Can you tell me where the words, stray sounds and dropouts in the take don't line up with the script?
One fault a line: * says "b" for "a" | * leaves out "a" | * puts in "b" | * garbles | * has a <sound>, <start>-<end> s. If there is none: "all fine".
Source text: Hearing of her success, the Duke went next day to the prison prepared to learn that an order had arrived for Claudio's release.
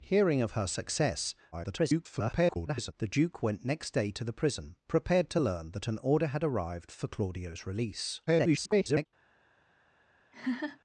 * garbles
* garbles
* has a laugh, 10.3-10.8 s